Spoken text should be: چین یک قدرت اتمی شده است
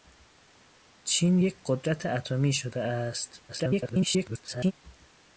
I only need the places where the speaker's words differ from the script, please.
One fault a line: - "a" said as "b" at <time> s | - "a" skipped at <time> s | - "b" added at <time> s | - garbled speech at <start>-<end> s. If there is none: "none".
- garbled speech at 3.5-4.7 s